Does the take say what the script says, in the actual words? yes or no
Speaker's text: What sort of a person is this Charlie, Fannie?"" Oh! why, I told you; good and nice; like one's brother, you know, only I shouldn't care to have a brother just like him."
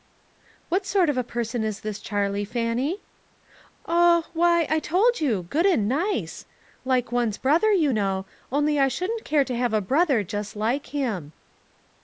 yes